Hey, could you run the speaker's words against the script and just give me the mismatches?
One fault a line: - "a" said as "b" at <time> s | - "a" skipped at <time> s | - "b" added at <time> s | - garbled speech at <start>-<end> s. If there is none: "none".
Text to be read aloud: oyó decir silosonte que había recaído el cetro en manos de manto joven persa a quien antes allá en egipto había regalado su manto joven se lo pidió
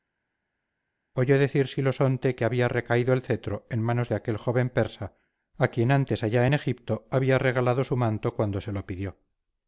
- "manto" said as "aquel" at 4.2 s
- "joven" said as "cuando" at 8.3 s